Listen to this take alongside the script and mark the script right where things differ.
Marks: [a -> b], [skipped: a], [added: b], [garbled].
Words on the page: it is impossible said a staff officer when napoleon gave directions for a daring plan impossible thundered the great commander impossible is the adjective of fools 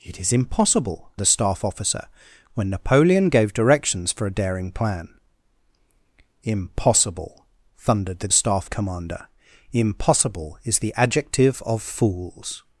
it is impossible [skipped: said] a staff officer when napoleon gave directions for a daring plan impossible thundered the [great -> staff] commander impossible is the adjective of fools